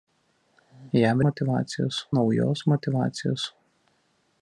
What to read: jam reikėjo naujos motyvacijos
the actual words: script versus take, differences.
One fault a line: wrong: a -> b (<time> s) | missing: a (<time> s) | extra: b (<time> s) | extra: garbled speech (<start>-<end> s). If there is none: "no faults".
wrong: reikėjo -> motyvacijos (1.3 s)